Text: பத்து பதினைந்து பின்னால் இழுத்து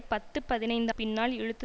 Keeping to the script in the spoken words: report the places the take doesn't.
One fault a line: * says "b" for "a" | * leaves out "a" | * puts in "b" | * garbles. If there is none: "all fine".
all fine